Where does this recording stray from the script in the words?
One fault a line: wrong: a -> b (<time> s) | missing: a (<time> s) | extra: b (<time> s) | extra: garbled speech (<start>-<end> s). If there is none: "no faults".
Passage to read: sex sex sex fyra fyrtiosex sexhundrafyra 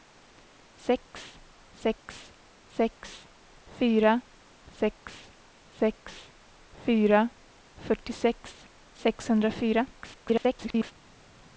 extra: sex sex fyra (4.8 s)
extra: garbled speech (9.9-10.9 s)